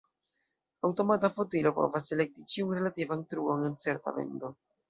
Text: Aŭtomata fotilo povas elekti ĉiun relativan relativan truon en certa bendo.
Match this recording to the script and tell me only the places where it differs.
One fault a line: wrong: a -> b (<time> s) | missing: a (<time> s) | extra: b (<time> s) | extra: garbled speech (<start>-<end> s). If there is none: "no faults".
missing: relativan (3.2 s)